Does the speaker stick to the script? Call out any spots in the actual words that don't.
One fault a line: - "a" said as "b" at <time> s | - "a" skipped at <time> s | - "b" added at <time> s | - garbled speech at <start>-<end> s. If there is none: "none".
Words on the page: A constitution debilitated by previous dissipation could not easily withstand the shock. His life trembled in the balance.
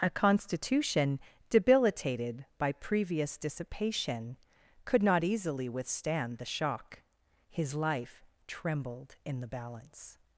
none